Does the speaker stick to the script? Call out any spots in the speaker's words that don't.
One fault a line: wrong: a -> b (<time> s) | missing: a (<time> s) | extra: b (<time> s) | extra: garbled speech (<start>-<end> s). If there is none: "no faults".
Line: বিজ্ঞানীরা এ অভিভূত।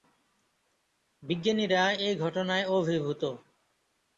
extra: ঘটনায় (2.1 s)